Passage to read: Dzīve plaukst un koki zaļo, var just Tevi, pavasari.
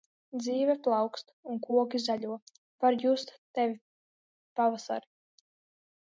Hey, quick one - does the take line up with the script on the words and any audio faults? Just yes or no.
yes